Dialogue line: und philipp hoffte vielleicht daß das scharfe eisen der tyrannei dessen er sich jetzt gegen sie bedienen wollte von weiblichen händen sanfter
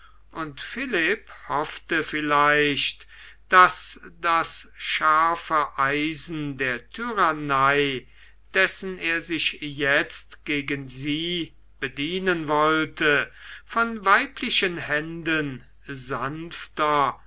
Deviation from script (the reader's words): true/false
false